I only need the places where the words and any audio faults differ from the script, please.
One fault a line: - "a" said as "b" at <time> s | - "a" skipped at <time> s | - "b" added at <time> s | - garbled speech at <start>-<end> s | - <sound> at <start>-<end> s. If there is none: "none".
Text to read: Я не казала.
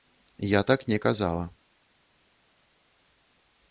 - "так" added at 0.6 s